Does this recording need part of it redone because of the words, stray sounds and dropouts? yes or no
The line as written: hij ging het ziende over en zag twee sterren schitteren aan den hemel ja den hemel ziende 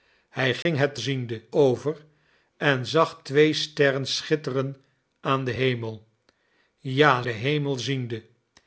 yes